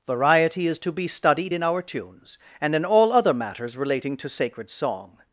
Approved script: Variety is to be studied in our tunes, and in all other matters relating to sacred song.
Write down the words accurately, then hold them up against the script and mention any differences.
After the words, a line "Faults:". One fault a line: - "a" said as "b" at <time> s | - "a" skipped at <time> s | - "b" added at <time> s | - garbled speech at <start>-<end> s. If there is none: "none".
Variety is to be studied in our tunes, and in all other matters relating to sacred song.
Faults:
none